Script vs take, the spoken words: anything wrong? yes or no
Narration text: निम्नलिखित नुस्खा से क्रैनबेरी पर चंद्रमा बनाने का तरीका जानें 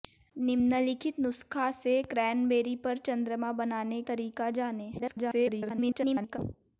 yes